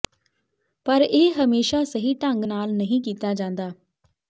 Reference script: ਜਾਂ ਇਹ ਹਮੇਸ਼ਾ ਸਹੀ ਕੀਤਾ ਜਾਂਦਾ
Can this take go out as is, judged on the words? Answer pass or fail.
fail